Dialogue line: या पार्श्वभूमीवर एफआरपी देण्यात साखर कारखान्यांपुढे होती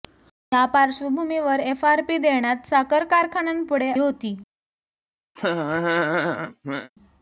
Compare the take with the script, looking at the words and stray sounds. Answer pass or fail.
fail